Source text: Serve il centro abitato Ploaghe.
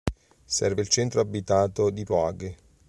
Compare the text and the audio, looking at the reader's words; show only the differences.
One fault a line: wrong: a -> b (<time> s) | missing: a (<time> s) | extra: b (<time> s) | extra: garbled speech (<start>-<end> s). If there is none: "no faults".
extra: di (1.9 s)